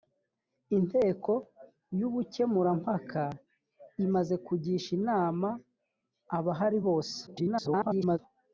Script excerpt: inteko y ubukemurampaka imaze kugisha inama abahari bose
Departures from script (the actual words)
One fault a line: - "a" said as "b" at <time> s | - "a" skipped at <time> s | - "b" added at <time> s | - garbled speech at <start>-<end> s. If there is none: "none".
- garbled speech at 7.3-8.2 s